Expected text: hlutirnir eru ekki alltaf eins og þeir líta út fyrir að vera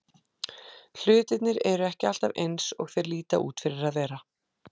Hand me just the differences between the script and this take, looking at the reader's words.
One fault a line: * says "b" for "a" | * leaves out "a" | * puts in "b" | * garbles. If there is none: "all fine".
all fine